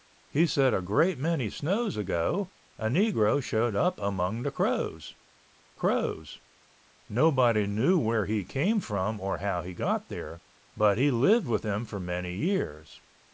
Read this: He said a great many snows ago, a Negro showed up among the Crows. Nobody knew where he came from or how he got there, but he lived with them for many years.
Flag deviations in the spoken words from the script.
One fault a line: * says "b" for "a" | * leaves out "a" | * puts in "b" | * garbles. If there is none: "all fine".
* puts in "Crows"